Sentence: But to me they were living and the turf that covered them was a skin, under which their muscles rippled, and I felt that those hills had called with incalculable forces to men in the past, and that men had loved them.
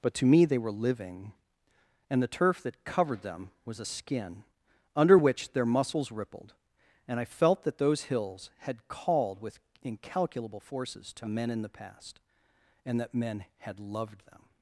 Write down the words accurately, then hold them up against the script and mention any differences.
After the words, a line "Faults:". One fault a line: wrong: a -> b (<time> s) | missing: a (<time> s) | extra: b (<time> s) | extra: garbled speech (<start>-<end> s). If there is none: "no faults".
But to me they were living and the turf that covered them was a skin, under which their muscles rippled, and I felt that those hills had called with incalculable forces to men in the past, and that men had loved them.
Faults:
no faults